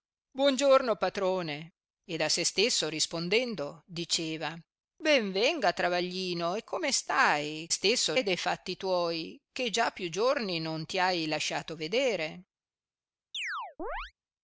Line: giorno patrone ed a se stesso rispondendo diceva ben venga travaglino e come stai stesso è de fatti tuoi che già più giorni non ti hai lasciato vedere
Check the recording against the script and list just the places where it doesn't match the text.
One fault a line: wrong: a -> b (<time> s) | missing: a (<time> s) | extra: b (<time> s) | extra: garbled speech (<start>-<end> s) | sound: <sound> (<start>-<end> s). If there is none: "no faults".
sound: chirp (13.3-14.1 s)